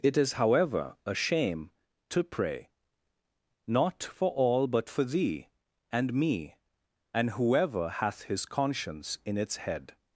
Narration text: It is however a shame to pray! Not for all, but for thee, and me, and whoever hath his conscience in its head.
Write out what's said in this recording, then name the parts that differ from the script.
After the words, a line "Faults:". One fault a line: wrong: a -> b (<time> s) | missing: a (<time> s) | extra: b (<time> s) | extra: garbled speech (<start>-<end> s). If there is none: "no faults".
It is however a shame to pray! Not for all, but for thee, and me, and whoever hath his conscience in its head.
Faults:
no faults